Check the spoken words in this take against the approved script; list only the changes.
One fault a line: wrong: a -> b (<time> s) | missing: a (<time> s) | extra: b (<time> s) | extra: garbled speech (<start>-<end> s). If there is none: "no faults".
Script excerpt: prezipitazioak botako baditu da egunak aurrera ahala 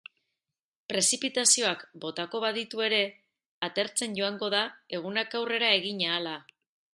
extra: ere atertzen joango (2.9 s)
extra: egin (5.8 s)